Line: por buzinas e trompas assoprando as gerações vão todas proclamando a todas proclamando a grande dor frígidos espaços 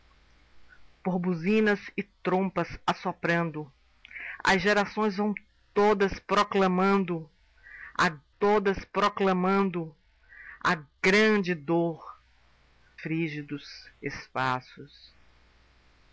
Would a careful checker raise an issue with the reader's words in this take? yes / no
no